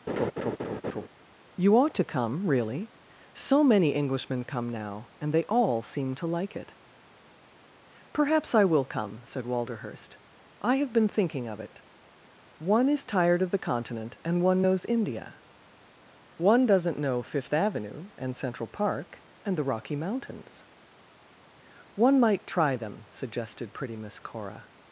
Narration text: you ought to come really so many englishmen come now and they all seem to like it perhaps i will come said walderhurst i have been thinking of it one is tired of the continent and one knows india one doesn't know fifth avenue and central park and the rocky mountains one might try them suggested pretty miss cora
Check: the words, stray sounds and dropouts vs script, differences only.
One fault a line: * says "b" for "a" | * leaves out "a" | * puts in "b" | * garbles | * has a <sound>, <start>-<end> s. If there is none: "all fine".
* has a laugh, 0.1-1.1 s